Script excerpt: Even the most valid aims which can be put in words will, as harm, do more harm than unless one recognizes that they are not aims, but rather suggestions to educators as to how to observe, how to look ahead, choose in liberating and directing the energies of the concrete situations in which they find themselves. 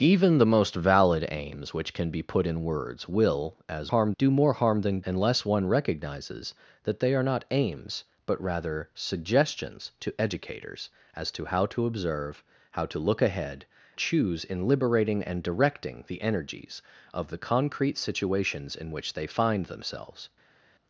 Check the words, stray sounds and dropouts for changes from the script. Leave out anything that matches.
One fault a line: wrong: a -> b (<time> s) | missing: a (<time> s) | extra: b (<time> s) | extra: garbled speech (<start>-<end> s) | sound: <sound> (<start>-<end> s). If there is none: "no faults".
no faults